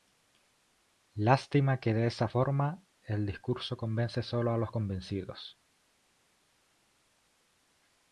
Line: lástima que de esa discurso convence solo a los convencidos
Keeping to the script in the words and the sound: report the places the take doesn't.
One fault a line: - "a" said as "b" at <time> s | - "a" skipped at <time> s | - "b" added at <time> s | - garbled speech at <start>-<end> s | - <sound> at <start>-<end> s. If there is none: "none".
- "forma el" added at 2.2 s